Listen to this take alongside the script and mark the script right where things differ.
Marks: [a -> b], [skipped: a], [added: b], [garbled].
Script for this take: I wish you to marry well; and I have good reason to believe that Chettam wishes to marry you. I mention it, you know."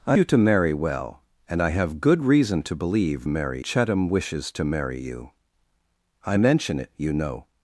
I [skipped: wish] you to marry well; and I have good reason to believe [that -> marry] Chettam wishes to marry you. I mention it, you know."